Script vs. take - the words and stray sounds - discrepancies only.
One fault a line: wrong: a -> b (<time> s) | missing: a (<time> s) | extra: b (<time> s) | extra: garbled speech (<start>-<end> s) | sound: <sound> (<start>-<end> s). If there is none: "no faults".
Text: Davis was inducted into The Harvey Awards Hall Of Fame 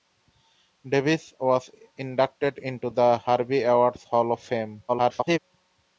extra: garbled speech (4.9-5.4 s)